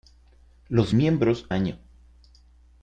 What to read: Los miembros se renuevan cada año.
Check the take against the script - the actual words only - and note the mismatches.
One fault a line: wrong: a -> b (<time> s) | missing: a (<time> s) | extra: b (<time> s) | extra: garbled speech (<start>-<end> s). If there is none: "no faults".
missing: se renuevan cada (1.5 s)